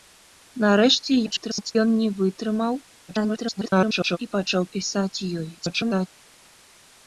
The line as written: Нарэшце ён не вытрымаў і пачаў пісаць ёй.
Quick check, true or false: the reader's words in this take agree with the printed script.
false